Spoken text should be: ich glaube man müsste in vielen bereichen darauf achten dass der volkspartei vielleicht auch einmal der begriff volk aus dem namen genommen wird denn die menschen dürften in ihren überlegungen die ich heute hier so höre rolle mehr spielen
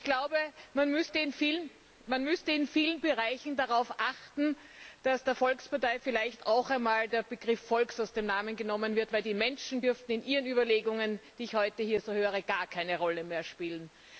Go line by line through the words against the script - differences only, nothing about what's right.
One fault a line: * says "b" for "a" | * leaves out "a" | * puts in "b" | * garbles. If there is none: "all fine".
* puts in "gar keine"